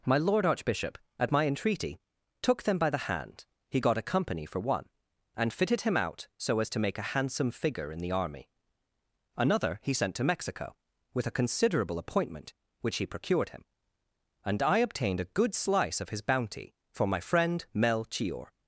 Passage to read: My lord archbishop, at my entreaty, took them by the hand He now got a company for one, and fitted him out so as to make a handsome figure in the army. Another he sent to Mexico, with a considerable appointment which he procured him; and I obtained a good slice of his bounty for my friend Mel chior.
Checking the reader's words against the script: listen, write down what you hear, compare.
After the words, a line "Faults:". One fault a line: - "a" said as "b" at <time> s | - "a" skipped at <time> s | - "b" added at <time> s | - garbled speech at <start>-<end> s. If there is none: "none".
My lord archbishop, at my entreaty, took them by the hand He got a company for one, and fitted him out so as to make a handsome figure in the army. Another he sent to Mexico, with a considerable appointment which he procured him; and I obtained a good slice of his bounty for my friend Mel chior.
Faults:
- "now" skipped at 3.8 s